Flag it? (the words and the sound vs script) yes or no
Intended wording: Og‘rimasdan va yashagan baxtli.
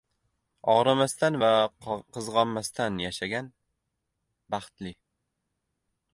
yes